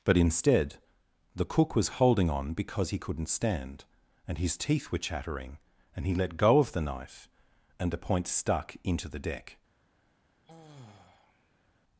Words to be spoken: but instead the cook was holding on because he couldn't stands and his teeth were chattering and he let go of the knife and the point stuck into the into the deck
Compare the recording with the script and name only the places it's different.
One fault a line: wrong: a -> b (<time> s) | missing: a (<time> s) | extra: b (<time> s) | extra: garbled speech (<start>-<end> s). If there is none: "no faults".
wrong: stands -> stand (3.3 s)
missing: into the (9.2 s)